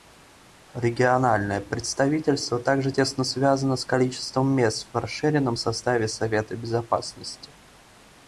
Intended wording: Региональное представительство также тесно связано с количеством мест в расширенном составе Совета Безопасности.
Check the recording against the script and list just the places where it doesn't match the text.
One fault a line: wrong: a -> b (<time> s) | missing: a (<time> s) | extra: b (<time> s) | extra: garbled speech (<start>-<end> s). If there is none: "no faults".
no faults